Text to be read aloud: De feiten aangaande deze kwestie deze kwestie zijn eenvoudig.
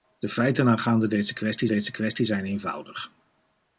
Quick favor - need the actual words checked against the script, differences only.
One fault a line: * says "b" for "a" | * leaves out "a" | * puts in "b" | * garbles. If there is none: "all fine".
all fine